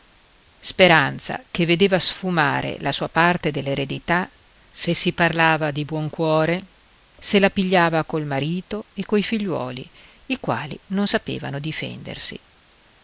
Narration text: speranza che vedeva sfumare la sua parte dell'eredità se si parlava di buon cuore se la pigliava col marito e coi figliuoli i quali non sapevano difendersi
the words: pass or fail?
pass